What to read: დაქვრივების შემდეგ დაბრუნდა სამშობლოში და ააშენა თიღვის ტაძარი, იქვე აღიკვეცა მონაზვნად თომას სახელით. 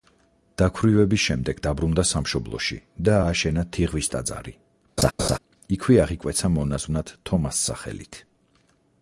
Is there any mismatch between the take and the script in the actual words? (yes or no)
no